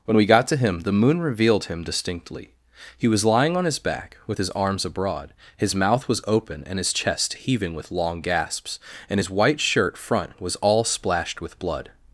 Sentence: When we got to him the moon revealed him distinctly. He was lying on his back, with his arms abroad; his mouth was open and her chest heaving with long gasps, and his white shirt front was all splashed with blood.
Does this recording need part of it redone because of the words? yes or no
yes